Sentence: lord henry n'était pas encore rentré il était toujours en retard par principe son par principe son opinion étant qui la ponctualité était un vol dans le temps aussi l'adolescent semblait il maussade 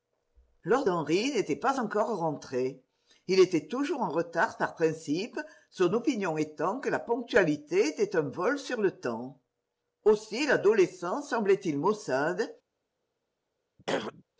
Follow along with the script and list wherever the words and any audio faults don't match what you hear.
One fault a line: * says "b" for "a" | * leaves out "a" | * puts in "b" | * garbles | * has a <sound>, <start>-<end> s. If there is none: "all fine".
* leaves out "par principe son"
* says "que" for "qui"
* says "sur" for "dans"
* has a throat clearing, 13.8-14.2 s